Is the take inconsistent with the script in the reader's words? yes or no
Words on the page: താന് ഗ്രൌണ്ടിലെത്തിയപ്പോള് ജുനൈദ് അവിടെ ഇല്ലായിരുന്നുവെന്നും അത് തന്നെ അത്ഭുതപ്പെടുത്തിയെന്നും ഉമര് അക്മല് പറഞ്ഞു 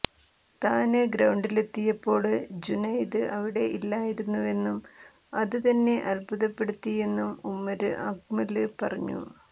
no